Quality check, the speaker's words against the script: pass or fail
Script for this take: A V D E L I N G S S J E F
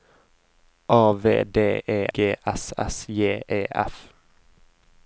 fail